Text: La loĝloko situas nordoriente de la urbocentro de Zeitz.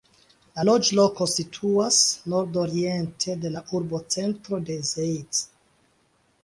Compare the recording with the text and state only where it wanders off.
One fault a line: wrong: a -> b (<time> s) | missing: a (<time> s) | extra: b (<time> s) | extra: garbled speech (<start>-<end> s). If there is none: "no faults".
no faults